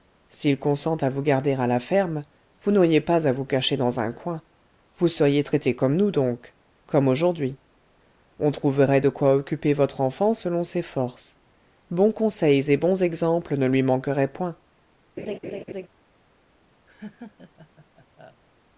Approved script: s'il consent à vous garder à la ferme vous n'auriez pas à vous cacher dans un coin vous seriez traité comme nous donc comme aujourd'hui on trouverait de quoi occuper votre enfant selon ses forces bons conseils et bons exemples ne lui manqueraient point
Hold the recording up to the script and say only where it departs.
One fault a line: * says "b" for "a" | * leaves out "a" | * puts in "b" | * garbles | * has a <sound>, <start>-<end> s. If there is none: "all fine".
* has a laugh, 15.2-15.9 s
* has a laugh, 16.9-18.4 s